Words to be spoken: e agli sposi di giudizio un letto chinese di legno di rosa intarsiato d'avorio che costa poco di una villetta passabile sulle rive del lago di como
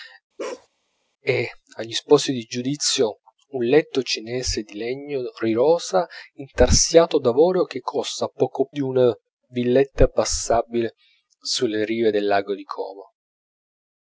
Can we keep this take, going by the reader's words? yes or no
yes